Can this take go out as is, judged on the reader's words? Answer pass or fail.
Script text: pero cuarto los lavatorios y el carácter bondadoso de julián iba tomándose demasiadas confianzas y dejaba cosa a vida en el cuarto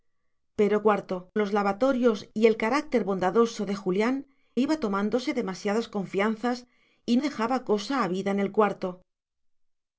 pass